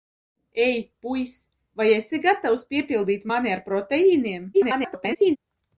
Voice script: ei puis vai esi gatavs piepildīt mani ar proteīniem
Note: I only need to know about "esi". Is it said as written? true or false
true